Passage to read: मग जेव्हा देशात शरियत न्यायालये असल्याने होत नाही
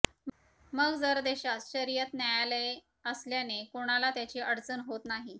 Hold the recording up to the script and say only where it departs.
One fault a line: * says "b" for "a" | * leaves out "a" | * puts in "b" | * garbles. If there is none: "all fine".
* says "जर" for "जेव्हा"
* puts in "कोणाला त्याची अडचण"